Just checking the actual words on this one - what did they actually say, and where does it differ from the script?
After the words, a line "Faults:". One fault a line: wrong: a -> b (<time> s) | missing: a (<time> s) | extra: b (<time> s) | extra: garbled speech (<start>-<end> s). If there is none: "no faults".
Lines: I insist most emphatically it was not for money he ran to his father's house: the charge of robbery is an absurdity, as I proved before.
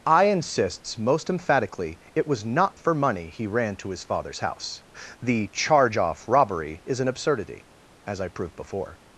I insists most emphatically it was not for money he ran to his father's house: the charge off robbery is an absurdity, as I proved before.
Faults:
wrong: insist -> insists (0.2 s)
wrong: of -> off (6.0 s)